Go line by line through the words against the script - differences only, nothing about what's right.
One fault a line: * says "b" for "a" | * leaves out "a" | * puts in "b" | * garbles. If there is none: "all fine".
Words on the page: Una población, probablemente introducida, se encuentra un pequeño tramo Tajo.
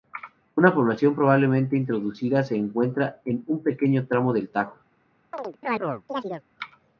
* puts in "en"
* puts in "del"